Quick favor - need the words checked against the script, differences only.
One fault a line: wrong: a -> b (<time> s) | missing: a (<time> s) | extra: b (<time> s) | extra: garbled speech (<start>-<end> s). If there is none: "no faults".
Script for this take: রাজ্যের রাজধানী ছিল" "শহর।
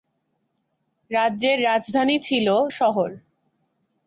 no faults